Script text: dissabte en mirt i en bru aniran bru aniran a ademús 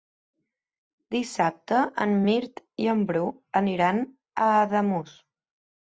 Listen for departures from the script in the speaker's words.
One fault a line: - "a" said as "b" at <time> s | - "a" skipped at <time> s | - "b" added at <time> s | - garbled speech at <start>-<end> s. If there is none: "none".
- "bru aniran" skipped at 4.0 s